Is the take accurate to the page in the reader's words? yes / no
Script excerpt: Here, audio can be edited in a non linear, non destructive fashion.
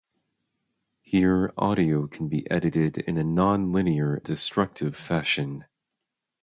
no